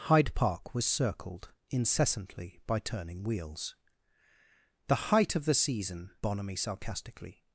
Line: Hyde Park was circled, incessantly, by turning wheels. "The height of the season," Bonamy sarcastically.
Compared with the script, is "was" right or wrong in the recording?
right